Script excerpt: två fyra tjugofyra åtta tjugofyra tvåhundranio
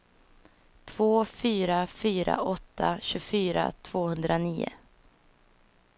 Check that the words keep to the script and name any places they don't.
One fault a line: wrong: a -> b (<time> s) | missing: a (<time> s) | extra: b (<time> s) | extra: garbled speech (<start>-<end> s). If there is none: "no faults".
wrong: tjugofyra -> fyra (1.9 s)